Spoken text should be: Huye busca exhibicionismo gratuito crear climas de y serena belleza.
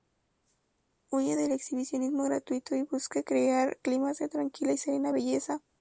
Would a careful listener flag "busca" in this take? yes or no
yes